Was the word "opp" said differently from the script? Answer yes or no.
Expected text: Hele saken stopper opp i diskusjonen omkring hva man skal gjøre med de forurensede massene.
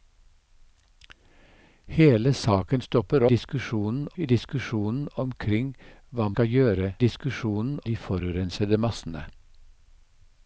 yes